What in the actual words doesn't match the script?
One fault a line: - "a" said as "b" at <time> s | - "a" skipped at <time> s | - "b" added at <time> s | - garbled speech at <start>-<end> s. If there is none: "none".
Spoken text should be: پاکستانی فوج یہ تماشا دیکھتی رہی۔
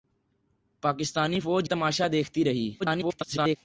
- "یہ" skipped at 1.7 s
- garbled speech at 2.8-3.6 s